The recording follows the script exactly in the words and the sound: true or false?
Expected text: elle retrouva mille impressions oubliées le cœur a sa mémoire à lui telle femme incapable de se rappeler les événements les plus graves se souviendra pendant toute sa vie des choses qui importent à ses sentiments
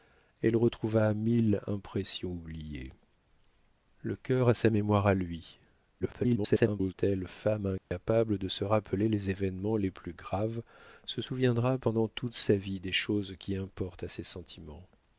false